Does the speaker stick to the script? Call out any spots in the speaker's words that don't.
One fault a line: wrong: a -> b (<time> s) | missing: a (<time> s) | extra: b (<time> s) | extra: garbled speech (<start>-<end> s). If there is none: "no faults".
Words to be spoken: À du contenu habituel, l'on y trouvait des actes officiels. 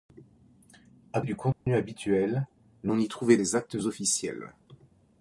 no faults